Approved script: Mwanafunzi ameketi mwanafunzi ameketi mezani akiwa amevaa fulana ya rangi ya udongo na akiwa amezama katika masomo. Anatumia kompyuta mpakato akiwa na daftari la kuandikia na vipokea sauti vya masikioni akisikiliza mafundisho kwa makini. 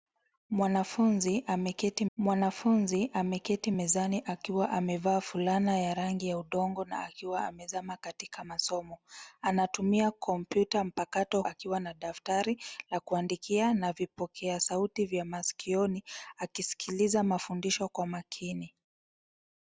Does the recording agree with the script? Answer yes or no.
yes